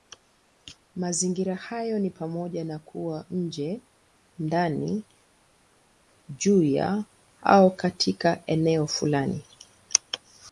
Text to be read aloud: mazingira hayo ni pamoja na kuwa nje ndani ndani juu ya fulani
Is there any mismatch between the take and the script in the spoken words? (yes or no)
yes